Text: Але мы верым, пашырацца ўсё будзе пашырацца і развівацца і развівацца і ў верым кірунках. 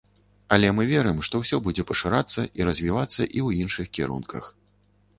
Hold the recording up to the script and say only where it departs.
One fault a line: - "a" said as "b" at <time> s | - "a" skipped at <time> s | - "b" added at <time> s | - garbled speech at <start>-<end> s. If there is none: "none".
- "пашырацца" said as "што" at 1.3 s
- "развівацца і" skipped at 3.4 s
- "верым" said as "іншых" at 3.7 s